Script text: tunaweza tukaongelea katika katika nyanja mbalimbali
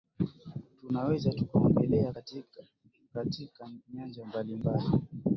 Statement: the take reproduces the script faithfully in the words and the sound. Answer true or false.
true